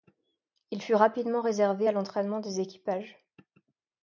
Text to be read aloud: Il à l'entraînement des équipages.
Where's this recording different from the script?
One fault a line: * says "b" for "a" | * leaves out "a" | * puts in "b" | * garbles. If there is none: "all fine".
* puts in "fut rapidement réservé"